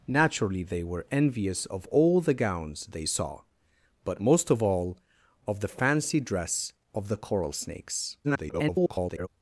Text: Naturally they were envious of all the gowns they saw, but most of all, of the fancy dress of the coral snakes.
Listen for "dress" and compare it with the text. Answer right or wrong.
right